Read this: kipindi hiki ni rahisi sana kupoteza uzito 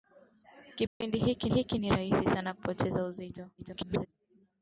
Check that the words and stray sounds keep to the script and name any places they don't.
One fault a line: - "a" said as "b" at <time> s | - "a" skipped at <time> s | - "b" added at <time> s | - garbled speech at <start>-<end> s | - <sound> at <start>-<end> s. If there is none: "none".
- dropout at 0.9-1.0 s
- "hiki" added at 1.5 s
- garbled speech at 3.6-4.1 s